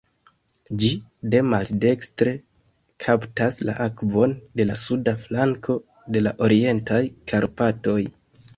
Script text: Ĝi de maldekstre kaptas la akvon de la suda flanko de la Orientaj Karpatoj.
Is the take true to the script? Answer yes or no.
yes